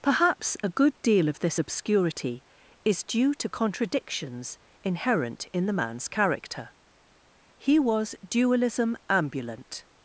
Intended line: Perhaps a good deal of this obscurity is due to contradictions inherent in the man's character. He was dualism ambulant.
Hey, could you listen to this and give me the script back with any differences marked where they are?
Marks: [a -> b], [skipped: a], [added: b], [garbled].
Perhaps a good deal of this obscurity is due to contradictions inherent in the man's character. He was dualism ambulant.